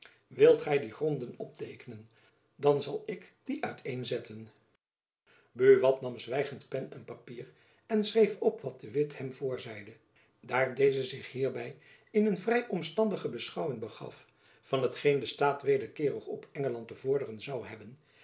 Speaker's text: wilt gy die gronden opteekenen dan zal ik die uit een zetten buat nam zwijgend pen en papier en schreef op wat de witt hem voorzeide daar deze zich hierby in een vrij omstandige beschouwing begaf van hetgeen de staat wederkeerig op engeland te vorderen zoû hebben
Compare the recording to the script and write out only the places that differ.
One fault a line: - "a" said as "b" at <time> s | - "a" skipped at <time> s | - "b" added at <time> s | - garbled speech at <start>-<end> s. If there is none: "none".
none